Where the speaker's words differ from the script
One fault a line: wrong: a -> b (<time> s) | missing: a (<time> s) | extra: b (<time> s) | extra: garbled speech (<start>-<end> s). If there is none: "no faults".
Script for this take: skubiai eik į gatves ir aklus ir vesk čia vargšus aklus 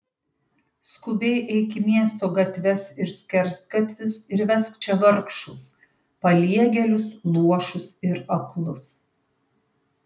extra: miesto (1.9 s)
wrong: aklus -> skersgatvius (3.2 s)
extra: paliegėlius luošus ir (6.3 s)